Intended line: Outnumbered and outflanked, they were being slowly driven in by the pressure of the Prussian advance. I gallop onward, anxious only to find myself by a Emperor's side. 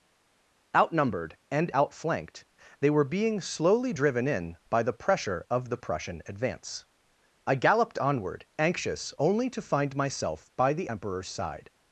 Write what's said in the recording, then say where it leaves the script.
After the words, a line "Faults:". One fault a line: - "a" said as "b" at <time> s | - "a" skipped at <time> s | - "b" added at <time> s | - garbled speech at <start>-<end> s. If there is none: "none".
Outnumbered and outflanked, they were being slowly driven in by the pressure of the Prussian advance. I galloped onward, anxious only to find myself by the Emperor's side.
Faults:
- "gallop" said as "galloped" at 7.5 s
- "a" said as "the" at 10.7 s